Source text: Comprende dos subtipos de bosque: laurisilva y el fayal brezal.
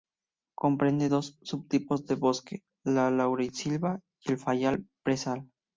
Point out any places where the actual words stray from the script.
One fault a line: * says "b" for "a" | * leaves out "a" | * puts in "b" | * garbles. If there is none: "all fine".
* puts in "la"